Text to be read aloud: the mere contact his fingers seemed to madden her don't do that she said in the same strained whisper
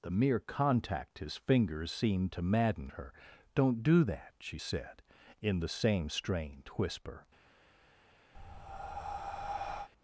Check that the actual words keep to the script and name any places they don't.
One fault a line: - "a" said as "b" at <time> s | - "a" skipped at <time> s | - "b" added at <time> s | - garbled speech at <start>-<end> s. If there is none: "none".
none